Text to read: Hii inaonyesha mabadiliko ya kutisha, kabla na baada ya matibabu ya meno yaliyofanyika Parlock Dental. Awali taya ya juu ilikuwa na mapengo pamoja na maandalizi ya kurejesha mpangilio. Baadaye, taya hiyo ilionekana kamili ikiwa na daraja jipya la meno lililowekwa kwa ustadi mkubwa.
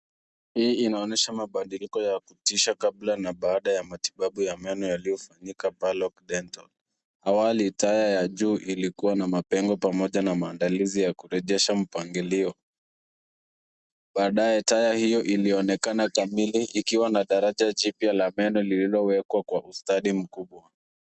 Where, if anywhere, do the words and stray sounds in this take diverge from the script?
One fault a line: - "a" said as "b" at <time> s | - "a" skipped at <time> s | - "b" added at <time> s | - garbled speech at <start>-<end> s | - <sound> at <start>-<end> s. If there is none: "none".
none